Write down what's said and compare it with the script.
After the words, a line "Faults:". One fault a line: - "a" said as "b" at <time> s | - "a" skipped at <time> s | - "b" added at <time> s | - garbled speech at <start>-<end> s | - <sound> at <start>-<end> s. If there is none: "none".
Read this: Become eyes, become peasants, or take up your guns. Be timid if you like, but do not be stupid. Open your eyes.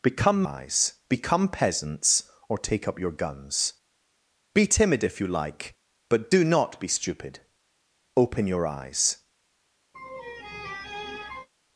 Become eyes, become peasants, or take up your guns. Be timid if you like, but do not be stupid. Open your eyes.
Faults:
- laugh at 9.9-11.5 s